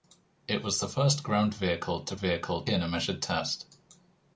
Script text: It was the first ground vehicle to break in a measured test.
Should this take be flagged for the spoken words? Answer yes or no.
yes